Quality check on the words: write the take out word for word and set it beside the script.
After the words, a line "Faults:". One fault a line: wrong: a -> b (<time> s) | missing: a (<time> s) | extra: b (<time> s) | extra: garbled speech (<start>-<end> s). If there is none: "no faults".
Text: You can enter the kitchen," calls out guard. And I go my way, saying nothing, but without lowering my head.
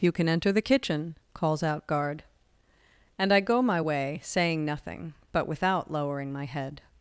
You can enter the kitchen," calls out guard. And I go my way, saying nothing, but without lowering my head.
Faults:
no faults